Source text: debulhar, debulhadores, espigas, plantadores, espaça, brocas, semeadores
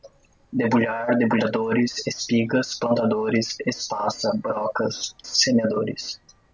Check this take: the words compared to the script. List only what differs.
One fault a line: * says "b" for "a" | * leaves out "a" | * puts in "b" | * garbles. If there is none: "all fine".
all fine